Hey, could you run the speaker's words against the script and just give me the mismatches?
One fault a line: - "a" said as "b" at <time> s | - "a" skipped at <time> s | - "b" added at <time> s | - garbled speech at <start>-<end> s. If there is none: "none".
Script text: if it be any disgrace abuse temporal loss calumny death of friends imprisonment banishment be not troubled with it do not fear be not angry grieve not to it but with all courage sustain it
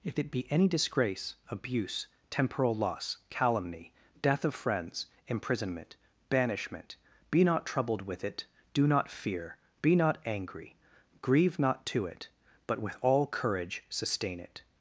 none